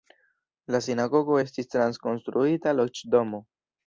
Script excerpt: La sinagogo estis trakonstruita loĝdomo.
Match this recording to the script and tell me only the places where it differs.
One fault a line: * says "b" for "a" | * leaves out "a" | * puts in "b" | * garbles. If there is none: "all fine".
all fine